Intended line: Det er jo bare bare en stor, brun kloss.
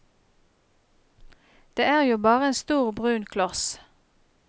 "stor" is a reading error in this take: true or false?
false